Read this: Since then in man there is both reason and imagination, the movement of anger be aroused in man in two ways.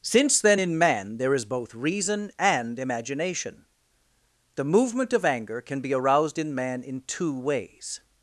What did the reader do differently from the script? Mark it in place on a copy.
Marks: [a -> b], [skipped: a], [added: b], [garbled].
Since then in man there is both reason and imagination, the movement of anger [added: can] be aroused in man in two ways.